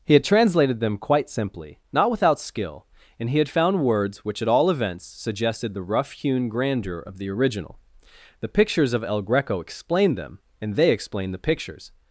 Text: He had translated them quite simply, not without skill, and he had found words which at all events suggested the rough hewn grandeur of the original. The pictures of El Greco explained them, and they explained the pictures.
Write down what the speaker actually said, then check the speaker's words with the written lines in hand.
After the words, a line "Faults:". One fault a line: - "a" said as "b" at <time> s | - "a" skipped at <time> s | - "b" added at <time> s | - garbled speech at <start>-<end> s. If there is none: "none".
He had translated them quite simply, not without skill, and he had found words which at all events suggested the rough hewn grandeur of the original. The pictures of El Greco explained them, and they explained the pictures.
Faults:
none